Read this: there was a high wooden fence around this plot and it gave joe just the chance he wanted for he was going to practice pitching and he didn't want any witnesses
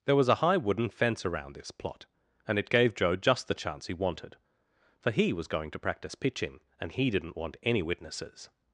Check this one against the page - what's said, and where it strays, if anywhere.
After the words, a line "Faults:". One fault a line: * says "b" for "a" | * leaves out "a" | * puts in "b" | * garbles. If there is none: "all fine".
there was a high wooden fence around this plot and it gave joe just the chance he wanted for he was going to practice pitching and he didn't want any witnesses
Faults:
all fine